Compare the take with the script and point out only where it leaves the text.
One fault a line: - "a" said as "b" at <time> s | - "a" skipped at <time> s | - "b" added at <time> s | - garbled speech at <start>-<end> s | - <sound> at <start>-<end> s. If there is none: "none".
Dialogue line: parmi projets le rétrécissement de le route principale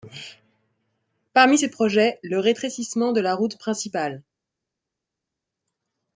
- "ces" added at 1.6 s
- "le" said as "la" at 3.2 s